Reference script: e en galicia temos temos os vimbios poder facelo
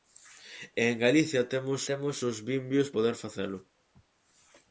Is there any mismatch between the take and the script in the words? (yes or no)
no